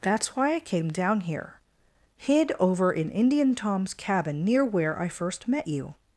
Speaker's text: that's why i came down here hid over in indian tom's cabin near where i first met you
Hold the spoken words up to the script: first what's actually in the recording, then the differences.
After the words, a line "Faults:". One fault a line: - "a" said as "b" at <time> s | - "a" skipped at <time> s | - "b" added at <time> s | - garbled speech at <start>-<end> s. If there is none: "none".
that's why i came down here hid over in indian tom's cabin near where i first met you
Faults:
none